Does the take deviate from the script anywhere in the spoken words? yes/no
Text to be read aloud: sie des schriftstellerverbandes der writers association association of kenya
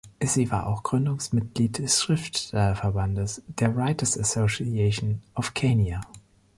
yes